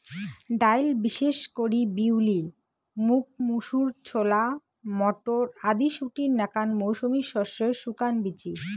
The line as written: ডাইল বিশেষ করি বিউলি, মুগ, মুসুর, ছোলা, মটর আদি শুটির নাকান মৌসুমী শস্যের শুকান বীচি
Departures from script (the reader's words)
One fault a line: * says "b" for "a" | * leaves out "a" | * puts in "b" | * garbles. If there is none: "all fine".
all fine